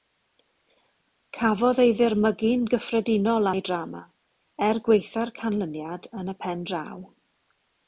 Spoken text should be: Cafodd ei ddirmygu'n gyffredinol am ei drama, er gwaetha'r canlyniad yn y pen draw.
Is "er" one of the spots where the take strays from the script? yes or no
no